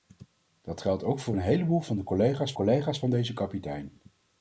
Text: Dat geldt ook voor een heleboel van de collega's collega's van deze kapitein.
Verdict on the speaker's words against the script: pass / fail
pass